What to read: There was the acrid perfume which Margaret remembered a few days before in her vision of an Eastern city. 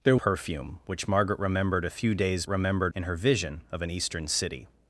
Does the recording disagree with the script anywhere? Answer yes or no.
yes